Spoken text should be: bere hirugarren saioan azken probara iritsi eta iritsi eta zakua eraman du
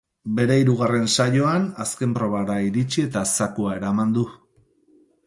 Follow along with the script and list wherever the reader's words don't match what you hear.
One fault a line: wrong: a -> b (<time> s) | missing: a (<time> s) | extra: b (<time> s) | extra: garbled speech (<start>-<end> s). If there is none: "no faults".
missing: iritsi eta (3.2 s)